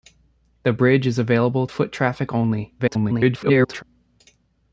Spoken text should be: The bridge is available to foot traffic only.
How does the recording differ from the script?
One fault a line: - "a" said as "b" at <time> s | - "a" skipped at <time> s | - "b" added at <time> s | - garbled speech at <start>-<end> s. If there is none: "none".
- "to" skipped at 1.7 s
- garbled speech at 2.8-3.8 s